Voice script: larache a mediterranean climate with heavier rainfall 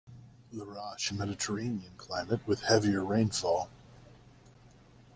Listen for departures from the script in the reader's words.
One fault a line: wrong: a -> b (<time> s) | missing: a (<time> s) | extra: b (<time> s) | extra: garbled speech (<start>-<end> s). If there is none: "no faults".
no faults